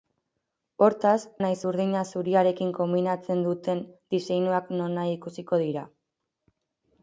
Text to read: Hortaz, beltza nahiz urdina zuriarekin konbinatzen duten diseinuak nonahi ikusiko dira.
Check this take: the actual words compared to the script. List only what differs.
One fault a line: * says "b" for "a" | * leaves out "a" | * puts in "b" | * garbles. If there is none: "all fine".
* leaves out "beltza"